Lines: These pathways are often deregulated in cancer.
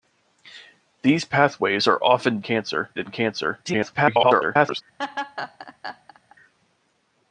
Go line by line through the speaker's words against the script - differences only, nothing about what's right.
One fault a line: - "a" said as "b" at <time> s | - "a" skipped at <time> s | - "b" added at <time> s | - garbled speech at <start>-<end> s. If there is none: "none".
- "deregulated" said as "cancer" at 2.4 s
- garbled speech at 3.6-4.8 s